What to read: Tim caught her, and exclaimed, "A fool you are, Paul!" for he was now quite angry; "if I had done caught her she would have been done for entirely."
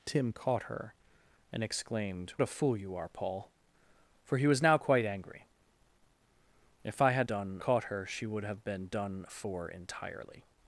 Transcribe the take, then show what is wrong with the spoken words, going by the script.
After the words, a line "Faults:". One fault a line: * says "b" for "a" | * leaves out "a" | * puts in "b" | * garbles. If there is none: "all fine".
Tim caught her, and exclaimed, "A fool you are, Paul!" for he was now quite angry; "if I had done caught her she would have been done for entirely."
Faults:
all fine